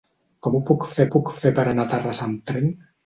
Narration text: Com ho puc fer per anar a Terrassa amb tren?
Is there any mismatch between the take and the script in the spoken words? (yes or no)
yes